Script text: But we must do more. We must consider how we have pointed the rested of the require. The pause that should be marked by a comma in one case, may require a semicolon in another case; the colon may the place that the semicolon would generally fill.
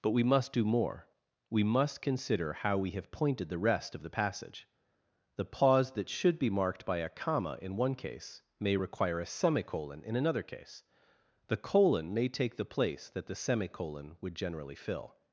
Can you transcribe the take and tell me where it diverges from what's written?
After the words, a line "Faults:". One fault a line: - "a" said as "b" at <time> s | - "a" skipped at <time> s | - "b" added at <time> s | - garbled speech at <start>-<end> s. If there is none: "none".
But we must do more. We must consider how we have pointed the rest of the passage. The pause that should be marked by a comma in one case, may require a semicolon in another case; the colon may take the place that the semicolon would generally fill.
Faults:
- "rested" said as "rest" at 3.6 s
- "require" said as "passage" at 4.1 s
- "take" added at 12.3 s